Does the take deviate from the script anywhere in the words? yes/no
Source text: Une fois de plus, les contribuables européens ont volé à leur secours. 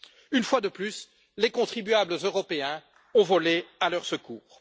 no